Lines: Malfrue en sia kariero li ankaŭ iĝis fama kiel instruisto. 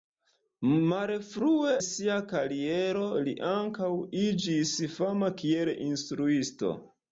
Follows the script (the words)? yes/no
no